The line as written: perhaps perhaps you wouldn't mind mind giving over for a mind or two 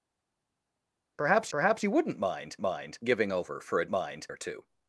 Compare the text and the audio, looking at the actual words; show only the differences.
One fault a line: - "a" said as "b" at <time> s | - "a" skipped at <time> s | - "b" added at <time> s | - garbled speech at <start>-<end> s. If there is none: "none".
none